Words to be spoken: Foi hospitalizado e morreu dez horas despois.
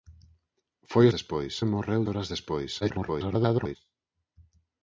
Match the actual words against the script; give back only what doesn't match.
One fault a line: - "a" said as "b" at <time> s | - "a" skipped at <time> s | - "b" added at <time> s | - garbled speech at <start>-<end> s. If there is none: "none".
- "hospitalizado" said as "despois" at 1.1 s
- "dez" skipped at 2.0 s
- garbled speech at 2.8-3.8 s